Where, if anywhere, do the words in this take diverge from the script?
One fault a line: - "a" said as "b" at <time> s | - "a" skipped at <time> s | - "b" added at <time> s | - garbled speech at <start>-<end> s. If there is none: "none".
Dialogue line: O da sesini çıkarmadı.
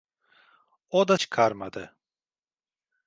- "sesini" skipped at 1.2 s